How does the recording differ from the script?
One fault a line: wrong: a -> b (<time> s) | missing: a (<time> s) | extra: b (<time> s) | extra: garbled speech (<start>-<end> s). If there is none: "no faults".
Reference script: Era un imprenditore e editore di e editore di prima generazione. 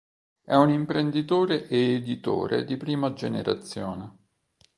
wrong: Era -> È (0.4 s)
missing: e editore di (2.8 s)